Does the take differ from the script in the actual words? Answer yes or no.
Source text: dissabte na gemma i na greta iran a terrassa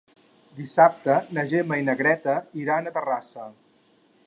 no